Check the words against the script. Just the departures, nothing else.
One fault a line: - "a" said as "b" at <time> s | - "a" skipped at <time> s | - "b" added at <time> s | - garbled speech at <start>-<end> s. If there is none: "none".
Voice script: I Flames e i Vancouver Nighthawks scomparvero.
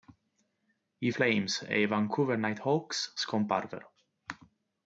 none